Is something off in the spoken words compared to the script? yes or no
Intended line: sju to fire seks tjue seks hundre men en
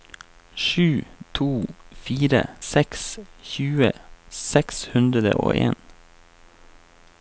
yes